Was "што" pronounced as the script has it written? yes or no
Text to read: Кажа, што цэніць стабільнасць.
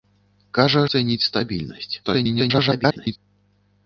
no